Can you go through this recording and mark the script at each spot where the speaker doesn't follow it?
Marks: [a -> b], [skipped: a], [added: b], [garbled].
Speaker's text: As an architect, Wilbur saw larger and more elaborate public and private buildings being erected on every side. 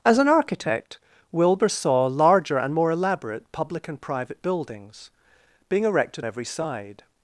As an architect, Wilbur saw larger and more elaborate public and private buildings being erected [skipped: on] every side.